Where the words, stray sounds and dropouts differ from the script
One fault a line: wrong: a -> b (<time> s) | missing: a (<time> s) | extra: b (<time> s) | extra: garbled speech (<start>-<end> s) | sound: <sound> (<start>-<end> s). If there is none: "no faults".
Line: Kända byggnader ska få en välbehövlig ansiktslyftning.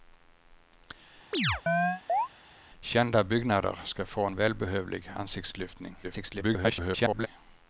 sound: chirp (1.3-2.3 s)
extra: garbled speech (6.0-7.3 s)